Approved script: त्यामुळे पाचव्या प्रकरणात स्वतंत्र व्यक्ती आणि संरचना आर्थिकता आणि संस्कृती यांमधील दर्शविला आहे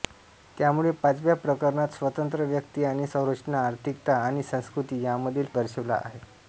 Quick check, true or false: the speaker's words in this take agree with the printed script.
true